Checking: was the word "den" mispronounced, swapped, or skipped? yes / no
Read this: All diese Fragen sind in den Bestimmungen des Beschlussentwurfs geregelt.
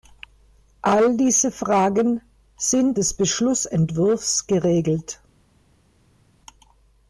yes